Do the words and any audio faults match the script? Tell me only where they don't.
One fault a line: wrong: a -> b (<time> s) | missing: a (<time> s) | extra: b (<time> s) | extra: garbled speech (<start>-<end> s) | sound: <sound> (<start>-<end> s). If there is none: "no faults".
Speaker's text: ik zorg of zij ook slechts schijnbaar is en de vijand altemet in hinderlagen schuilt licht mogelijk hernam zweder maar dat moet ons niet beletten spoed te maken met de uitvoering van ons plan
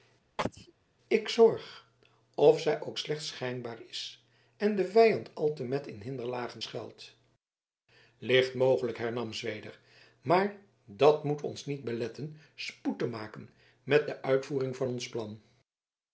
sound: sneeze (0.4-0.7 s)